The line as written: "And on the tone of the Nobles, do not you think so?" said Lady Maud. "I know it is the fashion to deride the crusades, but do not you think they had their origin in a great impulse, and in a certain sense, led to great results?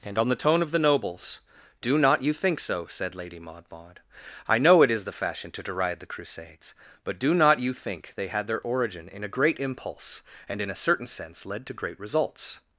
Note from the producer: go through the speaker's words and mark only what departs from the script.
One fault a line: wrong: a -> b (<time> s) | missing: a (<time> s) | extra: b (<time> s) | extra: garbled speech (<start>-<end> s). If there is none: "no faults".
extra: Maud (3.7 s)